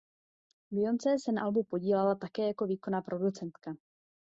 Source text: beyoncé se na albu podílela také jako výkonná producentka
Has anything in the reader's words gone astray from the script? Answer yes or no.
no